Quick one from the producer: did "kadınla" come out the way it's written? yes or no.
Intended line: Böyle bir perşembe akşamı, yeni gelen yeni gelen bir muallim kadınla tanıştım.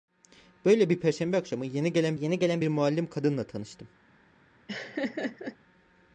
yes